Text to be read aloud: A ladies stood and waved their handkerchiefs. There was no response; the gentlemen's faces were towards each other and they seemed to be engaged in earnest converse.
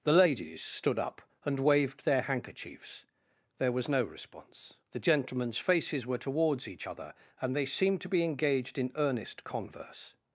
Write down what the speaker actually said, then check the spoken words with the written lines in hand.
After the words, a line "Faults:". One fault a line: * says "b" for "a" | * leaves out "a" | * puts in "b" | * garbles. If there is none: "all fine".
The ladies stood up and waved their handkerchiefs. There was no response; the gentlemen's faces were towards each other and they seemed to be engaged in earnest converse.
Faults:
* says "The" for "A"
* puts in "up"